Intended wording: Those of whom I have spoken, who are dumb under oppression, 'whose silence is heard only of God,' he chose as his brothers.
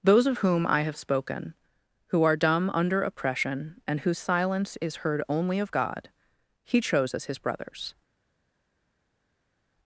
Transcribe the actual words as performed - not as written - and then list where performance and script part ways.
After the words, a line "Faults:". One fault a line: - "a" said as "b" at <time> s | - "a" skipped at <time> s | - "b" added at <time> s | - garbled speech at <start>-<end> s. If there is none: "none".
Those of whom I have spoken, who are dumb under oppression, and 'whose silence is heard only of God,' he chose as his brothers.
Faults:
- "and" added at 3.9 s